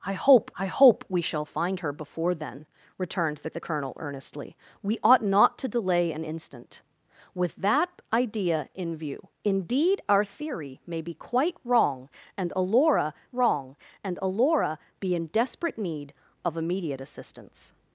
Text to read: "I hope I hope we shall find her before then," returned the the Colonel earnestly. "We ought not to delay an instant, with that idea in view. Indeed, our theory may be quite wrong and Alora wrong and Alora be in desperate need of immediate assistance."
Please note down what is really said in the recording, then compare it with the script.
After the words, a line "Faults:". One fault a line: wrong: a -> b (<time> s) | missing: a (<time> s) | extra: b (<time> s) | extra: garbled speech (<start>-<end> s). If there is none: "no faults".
"I hope I hope we shall find her before then," returned the the Colonel earnestly. "We ought not to delay an instant, with that idea in view. Indeed, our theory may be quite wrong and Alora wrong and Alora be in desperate need of immediate assistance."
Faults:
no faults